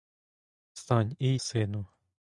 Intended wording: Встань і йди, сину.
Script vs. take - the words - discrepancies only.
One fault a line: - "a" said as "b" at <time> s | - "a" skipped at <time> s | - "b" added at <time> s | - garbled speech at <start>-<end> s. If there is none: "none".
- "йди" skipped at 1.4 s